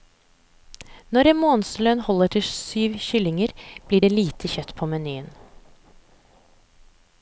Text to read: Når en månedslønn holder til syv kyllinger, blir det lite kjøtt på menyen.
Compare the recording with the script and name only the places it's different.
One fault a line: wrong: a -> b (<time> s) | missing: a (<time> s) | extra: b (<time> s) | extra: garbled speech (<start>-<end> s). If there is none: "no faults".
no faults